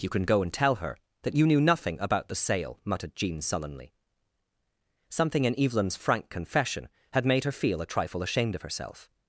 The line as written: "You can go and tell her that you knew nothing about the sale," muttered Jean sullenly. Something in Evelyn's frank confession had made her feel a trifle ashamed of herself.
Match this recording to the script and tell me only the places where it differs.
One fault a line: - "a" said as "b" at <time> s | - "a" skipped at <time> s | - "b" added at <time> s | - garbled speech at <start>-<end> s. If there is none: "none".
none